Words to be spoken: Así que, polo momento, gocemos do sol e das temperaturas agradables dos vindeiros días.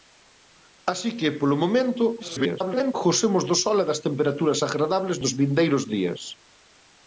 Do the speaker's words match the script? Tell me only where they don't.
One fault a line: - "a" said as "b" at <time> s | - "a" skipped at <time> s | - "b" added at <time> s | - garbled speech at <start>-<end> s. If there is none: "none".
- garbled speech at 2.2-2.9 s